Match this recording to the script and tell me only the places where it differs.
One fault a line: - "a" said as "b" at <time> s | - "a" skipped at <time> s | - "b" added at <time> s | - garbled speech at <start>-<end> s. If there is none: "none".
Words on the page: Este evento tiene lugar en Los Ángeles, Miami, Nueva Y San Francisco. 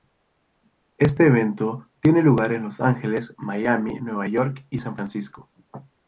- "York" added at 4.3 s